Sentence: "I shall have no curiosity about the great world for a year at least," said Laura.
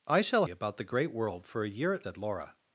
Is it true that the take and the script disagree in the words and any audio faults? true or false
true